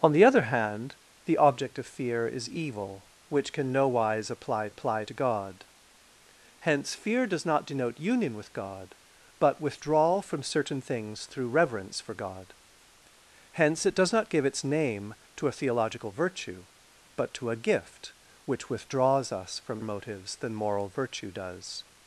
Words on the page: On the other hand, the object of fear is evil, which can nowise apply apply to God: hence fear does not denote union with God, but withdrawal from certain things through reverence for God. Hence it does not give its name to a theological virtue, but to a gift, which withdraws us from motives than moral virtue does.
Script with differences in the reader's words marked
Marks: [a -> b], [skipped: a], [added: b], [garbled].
On the other hand, the object of fear is evil, which can nowise apply apply to God: hence fear does not denote union with God, but withdrawal from certain things through reverence for God. Hence it does not give its name to a theological virtue, but to a gift, which withdraws us from motives than moral virtue does.